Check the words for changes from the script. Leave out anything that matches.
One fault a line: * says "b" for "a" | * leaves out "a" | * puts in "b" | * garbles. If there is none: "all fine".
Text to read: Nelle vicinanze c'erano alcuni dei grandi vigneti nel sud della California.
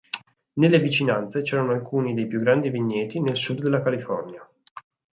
* puts in "più"